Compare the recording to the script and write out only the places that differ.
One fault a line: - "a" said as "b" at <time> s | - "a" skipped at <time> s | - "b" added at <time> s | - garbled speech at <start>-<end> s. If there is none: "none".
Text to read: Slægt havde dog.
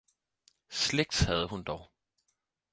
- "hun" added at 1.5 s